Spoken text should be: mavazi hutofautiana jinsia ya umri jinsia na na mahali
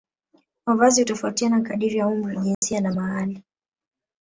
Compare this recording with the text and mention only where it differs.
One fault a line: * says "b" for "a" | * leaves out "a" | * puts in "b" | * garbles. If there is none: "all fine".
* says "kadiri" for "jinsia"
* leaves out "na"